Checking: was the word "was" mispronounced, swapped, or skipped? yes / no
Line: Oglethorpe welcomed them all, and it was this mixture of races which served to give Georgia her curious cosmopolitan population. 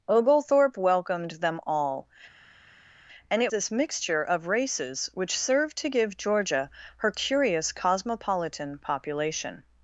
yes